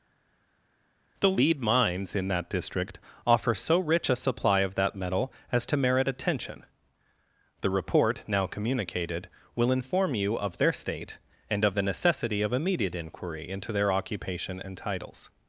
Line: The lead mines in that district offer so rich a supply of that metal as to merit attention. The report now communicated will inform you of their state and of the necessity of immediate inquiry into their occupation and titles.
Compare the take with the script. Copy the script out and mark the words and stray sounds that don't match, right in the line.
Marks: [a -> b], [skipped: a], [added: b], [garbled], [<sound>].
The lead mines in that district offer so rich a supply of that metal as to merit attention. The report now communicated will inform you of their state and of the necessity of immediate inquiry into their occupation and titles.